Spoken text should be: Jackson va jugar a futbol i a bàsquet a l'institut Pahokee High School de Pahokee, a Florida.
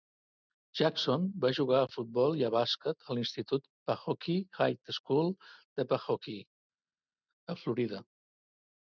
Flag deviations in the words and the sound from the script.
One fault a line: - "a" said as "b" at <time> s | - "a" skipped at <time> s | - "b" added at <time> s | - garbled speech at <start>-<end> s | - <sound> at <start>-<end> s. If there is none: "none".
none